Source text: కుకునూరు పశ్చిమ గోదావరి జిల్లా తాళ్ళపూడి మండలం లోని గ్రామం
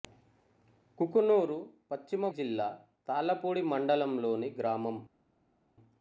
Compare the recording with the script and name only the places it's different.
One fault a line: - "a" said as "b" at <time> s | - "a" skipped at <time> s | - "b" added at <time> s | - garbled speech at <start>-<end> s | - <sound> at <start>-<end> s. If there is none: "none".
- "గోదావరి" skipped at 2.3 s